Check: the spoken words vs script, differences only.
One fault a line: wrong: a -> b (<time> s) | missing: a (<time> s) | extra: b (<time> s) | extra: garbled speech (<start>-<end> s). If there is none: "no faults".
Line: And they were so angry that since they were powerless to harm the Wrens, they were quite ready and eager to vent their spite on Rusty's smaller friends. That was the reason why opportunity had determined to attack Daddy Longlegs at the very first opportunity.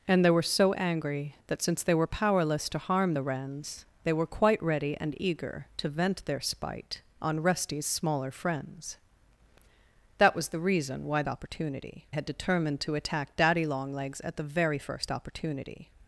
no faults